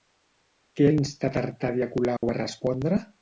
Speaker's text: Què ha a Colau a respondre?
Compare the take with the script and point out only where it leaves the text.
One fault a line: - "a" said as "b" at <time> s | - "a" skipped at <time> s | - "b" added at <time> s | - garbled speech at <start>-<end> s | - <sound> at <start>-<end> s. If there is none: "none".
- "instat Artadi" added at 1.0 s
- dropout at 2.2-2.2 s